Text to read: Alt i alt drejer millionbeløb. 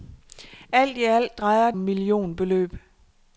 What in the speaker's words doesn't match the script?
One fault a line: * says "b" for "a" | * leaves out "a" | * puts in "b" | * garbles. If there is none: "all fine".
all fine